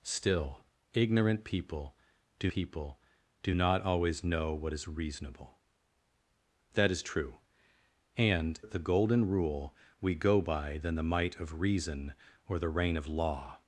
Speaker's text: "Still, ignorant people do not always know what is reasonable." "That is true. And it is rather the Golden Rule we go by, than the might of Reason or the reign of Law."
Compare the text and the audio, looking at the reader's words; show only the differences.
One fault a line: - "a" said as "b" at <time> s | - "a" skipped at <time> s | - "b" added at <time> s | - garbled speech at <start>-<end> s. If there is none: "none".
- "people do" added at 2.5 s
- "it is rather" skipped at 8.6 s